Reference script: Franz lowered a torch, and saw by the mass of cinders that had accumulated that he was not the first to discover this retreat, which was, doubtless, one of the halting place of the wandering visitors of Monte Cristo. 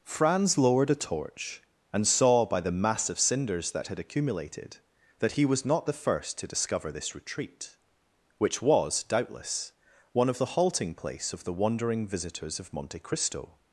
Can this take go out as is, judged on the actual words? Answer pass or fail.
pass